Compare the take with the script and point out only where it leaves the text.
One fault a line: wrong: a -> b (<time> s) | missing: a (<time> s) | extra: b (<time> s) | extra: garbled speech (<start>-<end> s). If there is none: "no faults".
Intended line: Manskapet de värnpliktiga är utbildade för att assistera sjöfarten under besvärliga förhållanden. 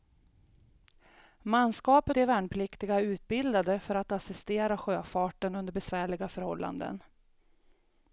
no faults